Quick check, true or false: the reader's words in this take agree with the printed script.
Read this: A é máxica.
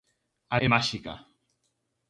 true